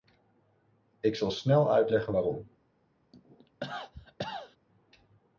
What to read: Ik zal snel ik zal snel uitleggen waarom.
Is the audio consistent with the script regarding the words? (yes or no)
no